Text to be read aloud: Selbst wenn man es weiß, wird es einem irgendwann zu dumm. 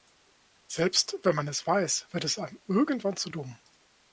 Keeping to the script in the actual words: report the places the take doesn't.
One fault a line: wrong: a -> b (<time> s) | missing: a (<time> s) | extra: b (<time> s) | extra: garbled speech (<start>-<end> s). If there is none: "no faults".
no faults